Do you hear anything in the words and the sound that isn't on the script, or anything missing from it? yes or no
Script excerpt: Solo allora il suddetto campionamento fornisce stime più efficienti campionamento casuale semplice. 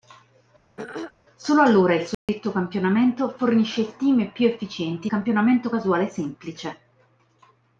yes